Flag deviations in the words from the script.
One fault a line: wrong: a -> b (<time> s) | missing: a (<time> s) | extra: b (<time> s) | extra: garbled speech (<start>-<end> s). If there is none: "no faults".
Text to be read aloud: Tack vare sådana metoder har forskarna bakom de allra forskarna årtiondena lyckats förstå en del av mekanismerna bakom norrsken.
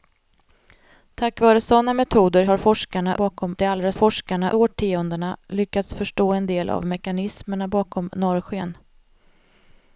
no faults